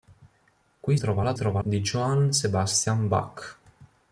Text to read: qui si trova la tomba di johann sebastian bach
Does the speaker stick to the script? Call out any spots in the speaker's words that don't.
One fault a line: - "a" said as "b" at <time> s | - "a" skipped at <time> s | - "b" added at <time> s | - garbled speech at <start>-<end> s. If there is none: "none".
- "si" skipped at 1.0 s
- "tomba" said as "trova" at 1.3 s